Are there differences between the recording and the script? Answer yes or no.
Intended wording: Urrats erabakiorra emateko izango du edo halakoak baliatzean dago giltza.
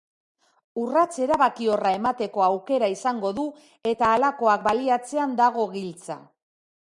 yes